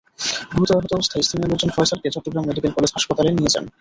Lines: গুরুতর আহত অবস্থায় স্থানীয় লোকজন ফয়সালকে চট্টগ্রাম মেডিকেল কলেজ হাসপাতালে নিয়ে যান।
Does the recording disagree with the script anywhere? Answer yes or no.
no